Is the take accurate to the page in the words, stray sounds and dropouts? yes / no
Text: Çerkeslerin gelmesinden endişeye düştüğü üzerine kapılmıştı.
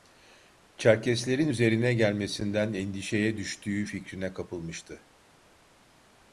no